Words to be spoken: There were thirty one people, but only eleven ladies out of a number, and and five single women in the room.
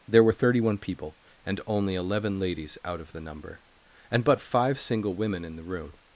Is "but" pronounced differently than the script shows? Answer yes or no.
yes